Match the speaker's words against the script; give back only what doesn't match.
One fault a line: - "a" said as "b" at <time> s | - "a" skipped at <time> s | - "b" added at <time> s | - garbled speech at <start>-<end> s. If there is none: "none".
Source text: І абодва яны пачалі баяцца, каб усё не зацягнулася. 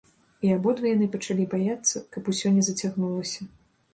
none